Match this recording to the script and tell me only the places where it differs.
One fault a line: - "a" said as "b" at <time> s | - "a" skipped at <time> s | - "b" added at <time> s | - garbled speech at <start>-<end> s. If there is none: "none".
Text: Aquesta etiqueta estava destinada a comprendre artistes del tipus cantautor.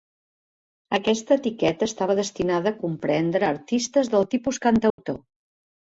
none